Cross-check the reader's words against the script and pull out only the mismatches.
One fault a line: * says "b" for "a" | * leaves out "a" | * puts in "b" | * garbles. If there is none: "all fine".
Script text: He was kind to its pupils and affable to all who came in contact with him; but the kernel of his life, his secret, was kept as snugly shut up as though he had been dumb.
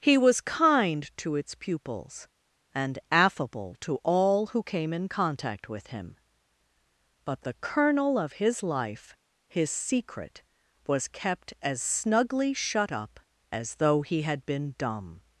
all fine